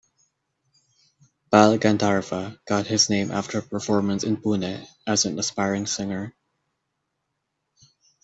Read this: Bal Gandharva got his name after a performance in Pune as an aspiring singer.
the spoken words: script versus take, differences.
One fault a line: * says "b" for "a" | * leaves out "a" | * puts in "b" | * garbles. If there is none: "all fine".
all fine